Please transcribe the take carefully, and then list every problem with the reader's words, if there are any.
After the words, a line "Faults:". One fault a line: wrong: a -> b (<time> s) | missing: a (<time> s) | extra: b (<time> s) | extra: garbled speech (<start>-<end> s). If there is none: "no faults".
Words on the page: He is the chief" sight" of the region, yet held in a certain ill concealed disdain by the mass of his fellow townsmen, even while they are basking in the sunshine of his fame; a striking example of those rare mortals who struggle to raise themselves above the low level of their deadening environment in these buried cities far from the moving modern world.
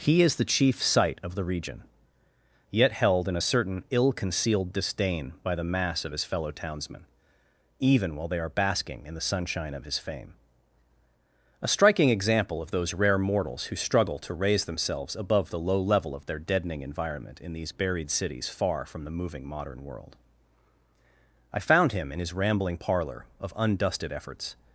He is the chief" sight" of the region, yet held in a certain ill concealed disdain by the mass of his fellow townsmen, even while they are basking in the sunshine of his fame; a striking example of those rare mortals who struggle to raise themselves above the low level of their deadening environment in these buried cities far from the moving modern world. I found him in his rambling parlor, of undusted efforts
Faults:
extra: I found him in his rambling parlor of undusted efforts (21.5 s)